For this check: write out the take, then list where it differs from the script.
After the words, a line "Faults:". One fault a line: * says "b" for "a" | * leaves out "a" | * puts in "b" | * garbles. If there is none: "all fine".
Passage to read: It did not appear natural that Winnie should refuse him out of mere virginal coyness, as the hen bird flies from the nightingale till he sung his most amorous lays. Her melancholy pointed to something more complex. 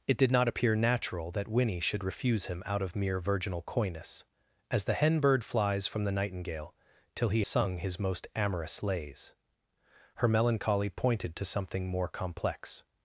It did not appear natural that Winnie should refuse him out of mere virginal coyness, as the hen bird flies from the nightingale till he sung his most amorous lays. Her melancholy pointed to something more complex.
Faults:
all fine